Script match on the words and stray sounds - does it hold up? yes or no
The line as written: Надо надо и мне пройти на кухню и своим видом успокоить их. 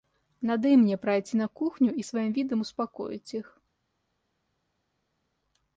no